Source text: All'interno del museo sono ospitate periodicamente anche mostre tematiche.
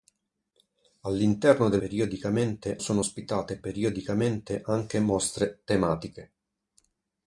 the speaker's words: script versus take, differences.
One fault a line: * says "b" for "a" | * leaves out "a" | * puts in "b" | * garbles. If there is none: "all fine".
* says "periodicamente" for "museo"